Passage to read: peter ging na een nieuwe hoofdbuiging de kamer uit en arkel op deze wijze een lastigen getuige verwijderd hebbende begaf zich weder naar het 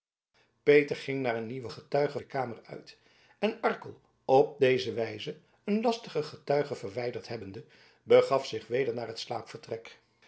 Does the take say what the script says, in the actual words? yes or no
no